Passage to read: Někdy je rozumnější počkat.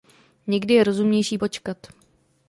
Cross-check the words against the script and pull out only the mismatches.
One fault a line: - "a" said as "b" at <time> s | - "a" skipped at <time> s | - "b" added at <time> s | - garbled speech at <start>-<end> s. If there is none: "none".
none